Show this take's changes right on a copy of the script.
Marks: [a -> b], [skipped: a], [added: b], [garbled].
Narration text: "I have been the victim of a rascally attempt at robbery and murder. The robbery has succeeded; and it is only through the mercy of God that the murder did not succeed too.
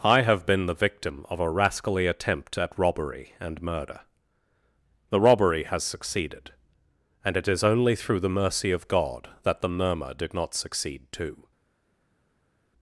"I have been the victim of a rascally attempt at robbery and murder. The robbery has succeeded; and it is only through the mercy of God that the [murder -> murmur] did not succeed too.